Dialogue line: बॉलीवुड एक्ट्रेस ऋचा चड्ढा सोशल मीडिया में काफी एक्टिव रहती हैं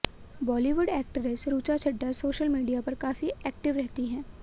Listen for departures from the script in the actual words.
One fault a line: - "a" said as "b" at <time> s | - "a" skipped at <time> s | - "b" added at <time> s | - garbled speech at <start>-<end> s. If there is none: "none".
- "में" said as "पर" at 2.8 s